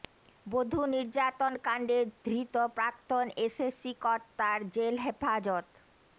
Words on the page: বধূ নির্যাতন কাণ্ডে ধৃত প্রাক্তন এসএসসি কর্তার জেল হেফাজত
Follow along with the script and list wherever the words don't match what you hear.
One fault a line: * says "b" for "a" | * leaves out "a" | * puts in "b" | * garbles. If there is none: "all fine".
all fine